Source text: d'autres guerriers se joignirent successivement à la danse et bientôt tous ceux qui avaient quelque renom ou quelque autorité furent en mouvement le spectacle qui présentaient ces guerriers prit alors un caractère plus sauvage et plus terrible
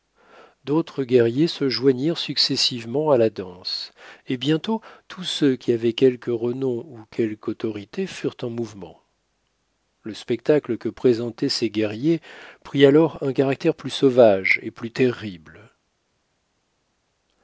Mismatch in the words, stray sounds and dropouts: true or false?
true